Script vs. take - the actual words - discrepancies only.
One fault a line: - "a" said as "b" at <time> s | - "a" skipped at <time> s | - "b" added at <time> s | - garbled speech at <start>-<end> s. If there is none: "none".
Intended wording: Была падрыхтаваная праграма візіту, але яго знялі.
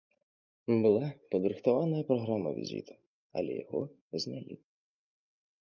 none